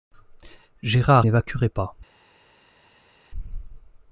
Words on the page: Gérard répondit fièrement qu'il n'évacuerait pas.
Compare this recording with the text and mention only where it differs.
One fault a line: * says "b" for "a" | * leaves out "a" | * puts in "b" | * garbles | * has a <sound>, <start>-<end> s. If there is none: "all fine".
* leaves out "répondit fièrement qu'il"